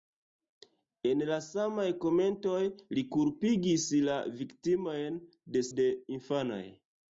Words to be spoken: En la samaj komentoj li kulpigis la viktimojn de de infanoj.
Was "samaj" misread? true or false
false